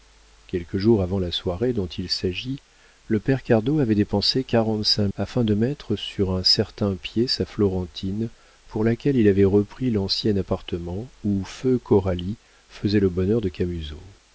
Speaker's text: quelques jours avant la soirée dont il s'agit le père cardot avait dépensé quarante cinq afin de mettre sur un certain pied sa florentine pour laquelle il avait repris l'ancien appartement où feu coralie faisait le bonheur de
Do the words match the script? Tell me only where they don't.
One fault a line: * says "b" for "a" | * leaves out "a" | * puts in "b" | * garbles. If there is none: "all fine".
all fine